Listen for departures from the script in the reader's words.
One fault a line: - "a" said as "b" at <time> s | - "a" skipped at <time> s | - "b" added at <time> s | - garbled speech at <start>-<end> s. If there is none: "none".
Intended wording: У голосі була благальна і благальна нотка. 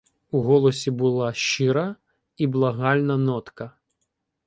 - "благальна" said as "щира" at 1.3 s